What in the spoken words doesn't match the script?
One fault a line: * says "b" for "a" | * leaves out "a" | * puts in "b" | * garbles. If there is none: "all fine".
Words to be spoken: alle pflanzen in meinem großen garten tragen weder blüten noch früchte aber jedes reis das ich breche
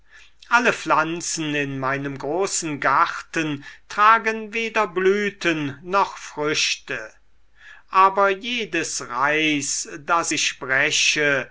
all fine